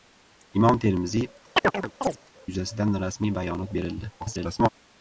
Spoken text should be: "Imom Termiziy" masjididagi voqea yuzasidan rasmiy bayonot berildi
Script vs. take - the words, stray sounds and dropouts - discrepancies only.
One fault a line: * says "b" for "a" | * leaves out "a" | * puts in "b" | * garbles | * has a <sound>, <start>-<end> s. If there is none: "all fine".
* leaves out "masjididagi voqea"
* has a chirp, 1.6-2.2 s
* garbles